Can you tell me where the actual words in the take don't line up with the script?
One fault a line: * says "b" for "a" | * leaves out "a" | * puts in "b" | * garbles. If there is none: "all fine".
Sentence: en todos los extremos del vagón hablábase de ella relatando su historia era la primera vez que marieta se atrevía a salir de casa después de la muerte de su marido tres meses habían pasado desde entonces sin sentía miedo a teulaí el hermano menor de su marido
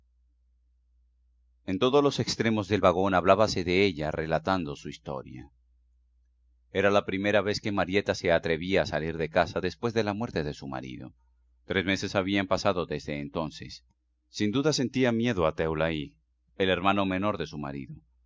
* puts in "duda"